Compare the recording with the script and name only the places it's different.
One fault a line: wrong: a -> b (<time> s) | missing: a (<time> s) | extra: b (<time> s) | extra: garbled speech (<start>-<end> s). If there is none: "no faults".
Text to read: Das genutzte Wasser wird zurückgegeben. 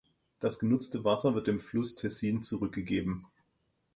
extra: dem Fluss Tessin (1.4 s)